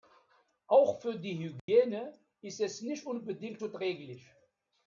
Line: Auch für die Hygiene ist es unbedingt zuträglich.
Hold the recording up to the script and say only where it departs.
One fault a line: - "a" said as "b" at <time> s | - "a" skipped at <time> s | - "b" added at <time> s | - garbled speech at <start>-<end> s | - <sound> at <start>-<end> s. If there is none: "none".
- dropout at 1.6-1.7 s
- "nicht" added at 2.8 s